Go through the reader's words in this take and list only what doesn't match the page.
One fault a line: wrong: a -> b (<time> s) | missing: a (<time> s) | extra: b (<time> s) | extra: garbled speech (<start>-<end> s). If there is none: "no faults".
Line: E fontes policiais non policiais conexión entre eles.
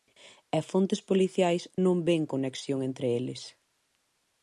wrong: policiais -> ven (2.1 s)